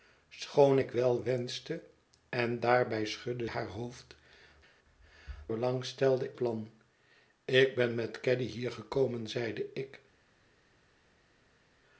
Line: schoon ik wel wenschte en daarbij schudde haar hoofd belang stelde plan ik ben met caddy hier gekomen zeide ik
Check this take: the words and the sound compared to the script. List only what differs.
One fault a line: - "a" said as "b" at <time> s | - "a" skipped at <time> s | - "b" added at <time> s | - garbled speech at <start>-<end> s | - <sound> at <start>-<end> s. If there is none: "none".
none